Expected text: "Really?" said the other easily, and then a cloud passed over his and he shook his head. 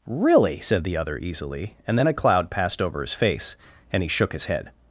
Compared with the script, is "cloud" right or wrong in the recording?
right